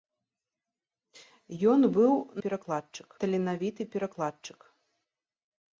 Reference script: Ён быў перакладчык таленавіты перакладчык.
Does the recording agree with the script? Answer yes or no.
yes